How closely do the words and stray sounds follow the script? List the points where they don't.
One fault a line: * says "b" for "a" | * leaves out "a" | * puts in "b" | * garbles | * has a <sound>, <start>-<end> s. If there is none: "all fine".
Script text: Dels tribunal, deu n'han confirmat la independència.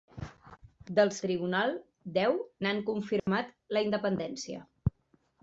* has a dropout, 3.2-3.3 s